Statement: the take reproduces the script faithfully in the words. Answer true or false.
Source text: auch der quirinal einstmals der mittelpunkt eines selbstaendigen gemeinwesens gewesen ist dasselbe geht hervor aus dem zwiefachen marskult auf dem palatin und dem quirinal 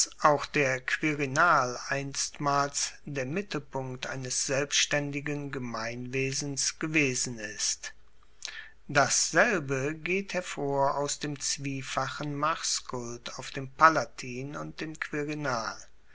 true